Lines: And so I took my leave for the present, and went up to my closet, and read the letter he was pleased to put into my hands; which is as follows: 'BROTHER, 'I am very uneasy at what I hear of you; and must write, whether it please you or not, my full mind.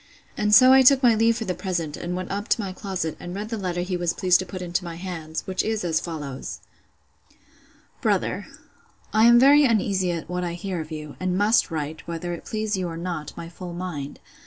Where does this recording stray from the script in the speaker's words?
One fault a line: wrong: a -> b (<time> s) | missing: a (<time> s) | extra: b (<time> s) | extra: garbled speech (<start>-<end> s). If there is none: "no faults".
no faults